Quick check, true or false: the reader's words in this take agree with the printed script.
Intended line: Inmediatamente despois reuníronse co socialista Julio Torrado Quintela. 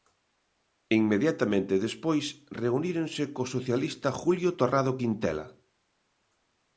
true